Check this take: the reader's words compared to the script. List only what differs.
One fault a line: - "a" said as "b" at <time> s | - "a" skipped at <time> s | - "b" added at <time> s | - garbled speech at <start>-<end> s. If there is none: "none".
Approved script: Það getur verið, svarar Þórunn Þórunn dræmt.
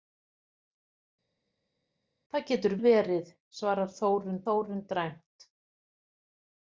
none